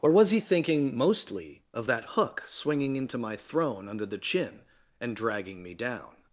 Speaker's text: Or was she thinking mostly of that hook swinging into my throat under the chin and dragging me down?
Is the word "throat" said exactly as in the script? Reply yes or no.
no